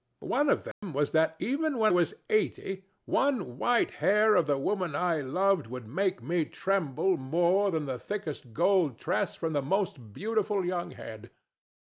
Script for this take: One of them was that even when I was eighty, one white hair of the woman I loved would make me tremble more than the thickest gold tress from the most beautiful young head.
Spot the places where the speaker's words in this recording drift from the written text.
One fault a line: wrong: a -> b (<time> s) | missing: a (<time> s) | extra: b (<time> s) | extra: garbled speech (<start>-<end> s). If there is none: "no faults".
missing: I (1.9 s)